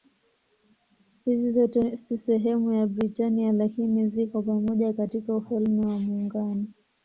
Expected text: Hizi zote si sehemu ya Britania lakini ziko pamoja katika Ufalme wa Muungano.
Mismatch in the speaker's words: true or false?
false